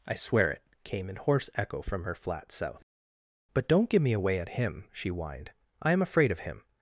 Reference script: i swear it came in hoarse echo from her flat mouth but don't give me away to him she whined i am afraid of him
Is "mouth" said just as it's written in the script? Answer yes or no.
no